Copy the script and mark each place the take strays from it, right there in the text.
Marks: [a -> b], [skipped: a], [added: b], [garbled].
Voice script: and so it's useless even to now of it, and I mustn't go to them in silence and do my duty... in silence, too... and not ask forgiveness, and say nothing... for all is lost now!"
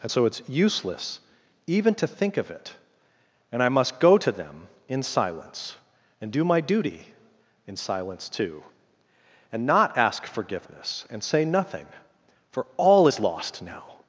and so it's useless even to [now -> think] of it, and I [mustn't -> must] go to them in silence and do my duty... in silence, too... and not ask forgiveness, and say nothing... for all is lost now!"